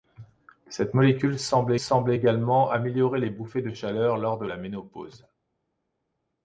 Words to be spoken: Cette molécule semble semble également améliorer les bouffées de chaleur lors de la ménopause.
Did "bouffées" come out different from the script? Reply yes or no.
no